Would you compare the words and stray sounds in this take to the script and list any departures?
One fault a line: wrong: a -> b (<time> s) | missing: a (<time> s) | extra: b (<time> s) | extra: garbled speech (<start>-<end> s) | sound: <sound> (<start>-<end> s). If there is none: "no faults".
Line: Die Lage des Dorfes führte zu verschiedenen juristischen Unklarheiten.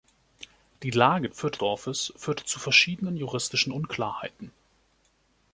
wrong: des -> führte (1.3 s)